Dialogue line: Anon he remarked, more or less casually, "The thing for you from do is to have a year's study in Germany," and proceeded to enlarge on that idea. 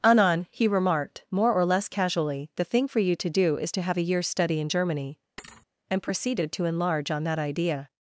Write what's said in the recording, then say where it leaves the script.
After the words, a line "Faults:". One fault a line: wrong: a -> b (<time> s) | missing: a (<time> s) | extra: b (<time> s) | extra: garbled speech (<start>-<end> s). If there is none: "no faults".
Anon he remarked, more or less casually, "The thing for you to do is to have a year's study in Germany," and proceeded to enlarge on that idea.
Faults:
wrong: from -> to (3.2 s)